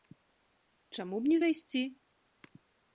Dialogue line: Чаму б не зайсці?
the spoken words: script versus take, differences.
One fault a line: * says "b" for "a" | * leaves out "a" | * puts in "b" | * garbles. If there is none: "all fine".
all fine